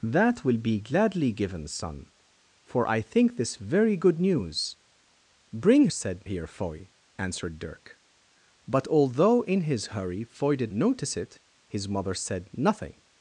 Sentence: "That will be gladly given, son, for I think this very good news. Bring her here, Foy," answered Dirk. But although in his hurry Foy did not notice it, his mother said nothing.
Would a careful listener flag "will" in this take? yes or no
no